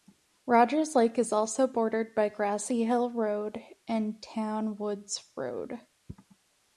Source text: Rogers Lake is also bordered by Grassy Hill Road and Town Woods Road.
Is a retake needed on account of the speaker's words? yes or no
no